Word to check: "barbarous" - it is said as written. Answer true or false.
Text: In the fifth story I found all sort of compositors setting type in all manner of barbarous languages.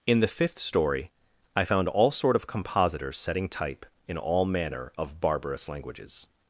true